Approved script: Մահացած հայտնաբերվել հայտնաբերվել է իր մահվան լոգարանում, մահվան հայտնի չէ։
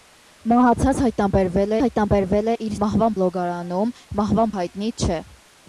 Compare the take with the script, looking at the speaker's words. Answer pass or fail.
pass